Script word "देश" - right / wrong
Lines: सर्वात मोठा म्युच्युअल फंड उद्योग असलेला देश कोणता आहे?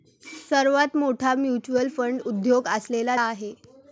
wrong